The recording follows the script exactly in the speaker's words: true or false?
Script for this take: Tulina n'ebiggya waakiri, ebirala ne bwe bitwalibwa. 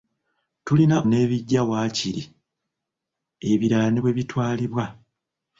true